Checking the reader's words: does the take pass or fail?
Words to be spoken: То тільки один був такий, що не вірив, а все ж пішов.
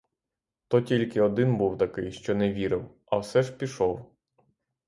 pass